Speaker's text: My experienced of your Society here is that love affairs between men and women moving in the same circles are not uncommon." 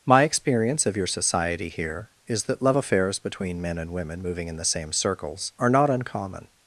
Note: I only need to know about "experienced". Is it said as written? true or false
false